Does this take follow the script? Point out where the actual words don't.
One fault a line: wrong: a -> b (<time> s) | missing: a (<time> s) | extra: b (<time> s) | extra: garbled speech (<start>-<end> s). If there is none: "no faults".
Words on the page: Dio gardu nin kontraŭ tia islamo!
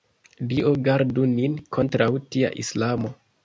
no faults